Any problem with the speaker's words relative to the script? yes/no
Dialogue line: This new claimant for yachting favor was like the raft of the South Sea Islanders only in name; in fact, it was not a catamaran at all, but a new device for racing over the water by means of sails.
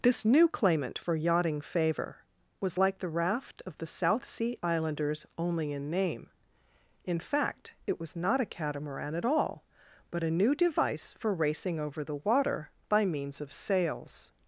no